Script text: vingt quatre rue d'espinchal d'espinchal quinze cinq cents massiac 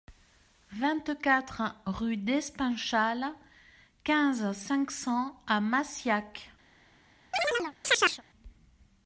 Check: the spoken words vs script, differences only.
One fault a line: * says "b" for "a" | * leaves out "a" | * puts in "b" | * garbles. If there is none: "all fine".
* leaves out "d'espinchal"
* puts in "à"